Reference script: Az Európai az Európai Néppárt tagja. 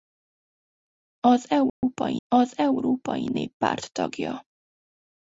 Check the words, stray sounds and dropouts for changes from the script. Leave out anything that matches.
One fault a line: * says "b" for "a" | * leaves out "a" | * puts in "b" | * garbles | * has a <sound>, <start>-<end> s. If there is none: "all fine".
* has a dropout, 1.7-1.8 s